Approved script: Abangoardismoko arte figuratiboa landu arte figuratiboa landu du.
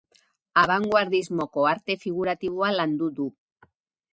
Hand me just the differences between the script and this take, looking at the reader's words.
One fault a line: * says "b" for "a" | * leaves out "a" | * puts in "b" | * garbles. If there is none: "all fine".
* leaves out "arte figuratiboa landu"